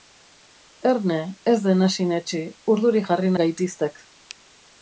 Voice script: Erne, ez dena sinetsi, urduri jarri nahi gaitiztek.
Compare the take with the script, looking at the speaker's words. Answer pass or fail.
fail